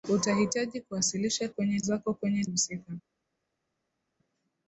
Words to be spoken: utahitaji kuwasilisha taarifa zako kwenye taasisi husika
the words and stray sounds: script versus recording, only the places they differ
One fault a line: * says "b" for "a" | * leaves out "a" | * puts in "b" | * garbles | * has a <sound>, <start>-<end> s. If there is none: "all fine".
* says "kwenye" for "taarifa"
* leaves out "taasisi"